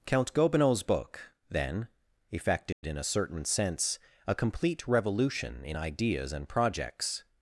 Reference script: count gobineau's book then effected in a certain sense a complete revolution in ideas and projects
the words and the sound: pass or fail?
fail